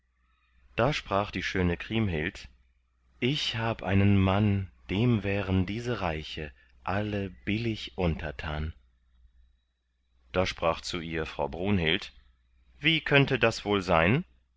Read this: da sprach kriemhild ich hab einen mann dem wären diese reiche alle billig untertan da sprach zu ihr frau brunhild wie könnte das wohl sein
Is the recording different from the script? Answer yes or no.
yes